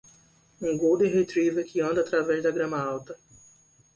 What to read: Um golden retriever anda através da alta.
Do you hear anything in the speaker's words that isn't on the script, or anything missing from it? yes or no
yes